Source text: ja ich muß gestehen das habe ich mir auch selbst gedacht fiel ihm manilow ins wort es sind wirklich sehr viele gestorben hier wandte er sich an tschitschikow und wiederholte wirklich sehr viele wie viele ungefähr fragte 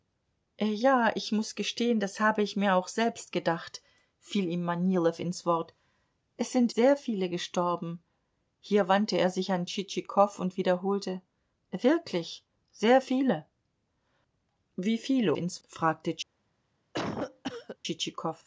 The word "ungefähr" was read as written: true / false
false